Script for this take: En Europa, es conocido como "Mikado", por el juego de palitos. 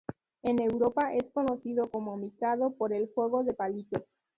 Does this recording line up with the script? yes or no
yes